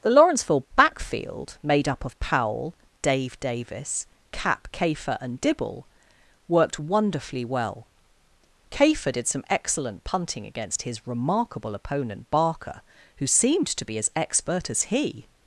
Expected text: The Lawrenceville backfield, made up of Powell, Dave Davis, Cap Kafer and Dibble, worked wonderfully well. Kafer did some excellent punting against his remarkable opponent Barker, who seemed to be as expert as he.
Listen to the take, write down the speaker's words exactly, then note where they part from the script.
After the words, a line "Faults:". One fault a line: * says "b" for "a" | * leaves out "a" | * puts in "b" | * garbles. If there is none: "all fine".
The Lawrenceville backfield, made up of Powell, Dave Davis, Cap Kafer and Dibble, worked wonderfully well. Kafer did some excellent punting against his remarkable opponent Barker, who seemed to be as expert as he.
Faults:
all fine